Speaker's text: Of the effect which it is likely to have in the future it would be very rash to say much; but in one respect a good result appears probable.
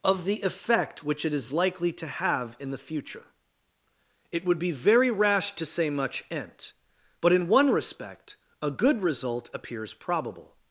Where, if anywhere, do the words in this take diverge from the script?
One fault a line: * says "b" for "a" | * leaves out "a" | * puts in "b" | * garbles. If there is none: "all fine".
* puts in "ent"